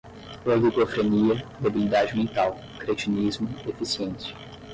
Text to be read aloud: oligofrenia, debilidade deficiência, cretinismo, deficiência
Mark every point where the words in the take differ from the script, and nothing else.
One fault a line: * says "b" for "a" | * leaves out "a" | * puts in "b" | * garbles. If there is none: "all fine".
* says "mental" for "deficiência"